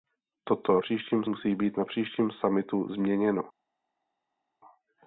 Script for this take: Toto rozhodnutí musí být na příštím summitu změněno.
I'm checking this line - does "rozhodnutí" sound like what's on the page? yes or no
no